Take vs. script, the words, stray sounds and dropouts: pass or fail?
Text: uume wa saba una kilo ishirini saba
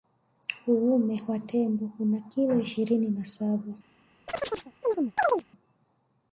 fail